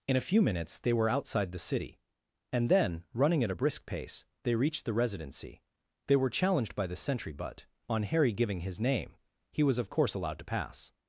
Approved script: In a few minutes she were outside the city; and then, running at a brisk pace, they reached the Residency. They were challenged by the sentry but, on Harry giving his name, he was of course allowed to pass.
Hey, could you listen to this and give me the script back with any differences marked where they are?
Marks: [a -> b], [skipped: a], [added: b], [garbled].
In a few minutes [she -> they] were outside the city; and then, running at a brisk pace, they reached the Residency. They were challenged by the sentry but, on Harry giving his name, he was of course allowed to pass.